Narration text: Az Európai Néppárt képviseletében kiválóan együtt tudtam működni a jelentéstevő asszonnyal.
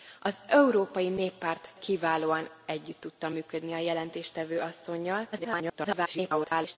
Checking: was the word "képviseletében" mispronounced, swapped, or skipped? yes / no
yes